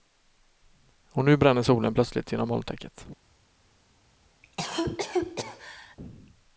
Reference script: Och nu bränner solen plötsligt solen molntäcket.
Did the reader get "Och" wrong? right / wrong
right